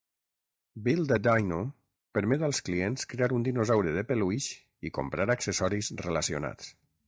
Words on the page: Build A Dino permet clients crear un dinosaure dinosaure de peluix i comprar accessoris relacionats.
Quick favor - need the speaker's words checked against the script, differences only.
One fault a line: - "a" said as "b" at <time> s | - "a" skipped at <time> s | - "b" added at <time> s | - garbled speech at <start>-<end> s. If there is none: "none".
- "als" added at 2.5 s
- "dinosaure" skipped at 4.0 s